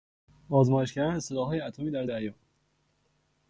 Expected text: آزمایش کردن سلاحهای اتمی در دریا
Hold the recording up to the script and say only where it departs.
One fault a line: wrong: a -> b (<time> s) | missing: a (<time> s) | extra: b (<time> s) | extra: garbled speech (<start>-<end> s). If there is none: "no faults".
no faults